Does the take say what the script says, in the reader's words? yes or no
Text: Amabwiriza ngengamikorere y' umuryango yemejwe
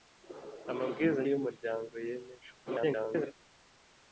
no